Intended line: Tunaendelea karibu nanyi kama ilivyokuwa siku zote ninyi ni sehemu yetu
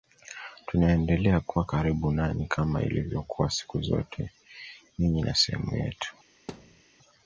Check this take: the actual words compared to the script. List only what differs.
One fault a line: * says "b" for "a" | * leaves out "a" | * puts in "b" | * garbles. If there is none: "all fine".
* puts in "kuwa"